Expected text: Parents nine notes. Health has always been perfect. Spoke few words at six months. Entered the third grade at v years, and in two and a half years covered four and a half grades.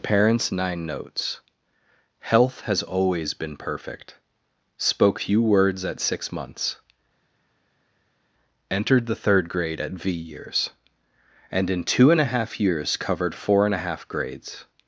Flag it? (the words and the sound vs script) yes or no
no